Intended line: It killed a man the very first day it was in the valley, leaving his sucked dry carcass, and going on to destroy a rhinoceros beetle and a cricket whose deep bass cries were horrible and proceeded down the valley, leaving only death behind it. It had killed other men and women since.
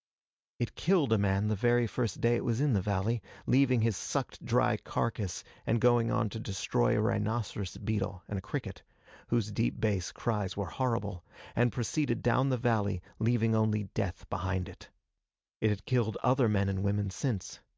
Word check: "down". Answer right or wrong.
right